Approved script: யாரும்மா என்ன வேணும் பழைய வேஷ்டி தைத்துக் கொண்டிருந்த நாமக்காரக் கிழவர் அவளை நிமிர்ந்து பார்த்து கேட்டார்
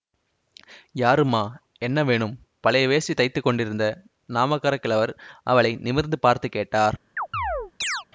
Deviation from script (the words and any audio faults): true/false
true